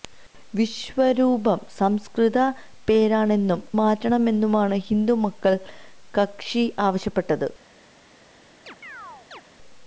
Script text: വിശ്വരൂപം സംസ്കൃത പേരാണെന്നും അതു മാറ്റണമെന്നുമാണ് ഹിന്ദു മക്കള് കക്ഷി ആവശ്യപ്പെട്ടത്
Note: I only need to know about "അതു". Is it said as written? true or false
false